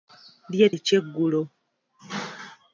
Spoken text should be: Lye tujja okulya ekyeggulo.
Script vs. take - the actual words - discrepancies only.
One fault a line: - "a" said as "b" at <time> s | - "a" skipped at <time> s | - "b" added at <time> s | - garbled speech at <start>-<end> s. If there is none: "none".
- "tujja okulya" skipped at 0.7 s